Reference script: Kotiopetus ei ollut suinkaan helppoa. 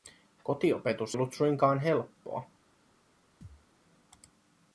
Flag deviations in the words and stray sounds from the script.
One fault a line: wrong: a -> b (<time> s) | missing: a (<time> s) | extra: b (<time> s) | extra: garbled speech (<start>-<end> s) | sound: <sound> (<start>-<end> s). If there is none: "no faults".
missing: ei (1.2 s)
sound: thud (3.4-3.7 s)